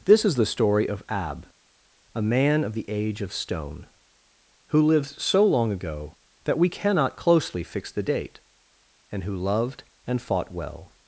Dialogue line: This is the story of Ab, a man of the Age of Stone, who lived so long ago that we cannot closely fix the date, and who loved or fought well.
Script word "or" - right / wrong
wrong